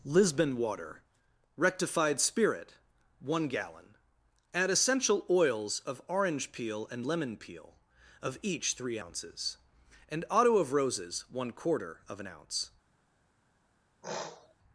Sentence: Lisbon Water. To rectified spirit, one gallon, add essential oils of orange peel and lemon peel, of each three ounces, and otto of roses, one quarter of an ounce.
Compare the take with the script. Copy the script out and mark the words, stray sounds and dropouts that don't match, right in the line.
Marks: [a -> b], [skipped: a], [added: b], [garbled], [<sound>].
Lisbon Water. [skipped: To] rectified spirit, one gallon, add essential oils of orange peel and lemon peel, of each three ounces, and otto of roses, one quarter of an ounce. [sniff]